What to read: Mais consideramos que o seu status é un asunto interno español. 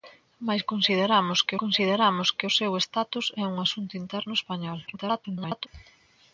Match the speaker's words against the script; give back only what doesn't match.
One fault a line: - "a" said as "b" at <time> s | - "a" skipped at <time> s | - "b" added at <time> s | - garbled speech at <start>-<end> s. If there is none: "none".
- "consideramos que" added at 1.6 s
- garbled speech at 4.9-5.7 s